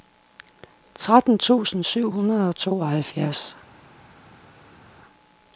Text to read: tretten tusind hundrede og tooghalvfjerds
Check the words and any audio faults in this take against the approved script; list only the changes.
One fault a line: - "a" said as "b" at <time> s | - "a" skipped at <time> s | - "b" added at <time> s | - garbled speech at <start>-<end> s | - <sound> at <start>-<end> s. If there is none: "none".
- "syv" added at 1.8 s